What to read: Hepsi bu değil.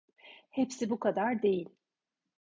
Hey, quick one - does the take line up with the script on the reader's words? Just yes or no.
no